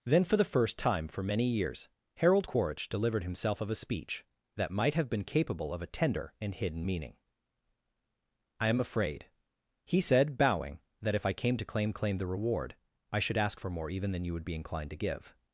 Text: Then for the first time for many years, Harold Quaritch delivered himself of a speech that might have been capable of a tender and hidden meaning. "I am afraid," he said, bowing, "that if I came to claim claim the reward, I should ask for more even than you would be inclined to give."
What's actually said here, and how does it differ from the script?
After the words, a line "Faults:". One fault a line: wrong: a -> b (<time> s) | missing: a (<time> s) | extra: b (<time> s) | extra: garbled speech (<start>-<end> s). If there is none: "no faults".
Then for the first time for many years, Harold Quaritch delivered himself of a speech that might have been capable of a tender and hidden meaning. "I am afraid," he said, bowing, "that if I came to claim claim the reward, I should ask for more even than you would be inclined to give."
Faults:
no faults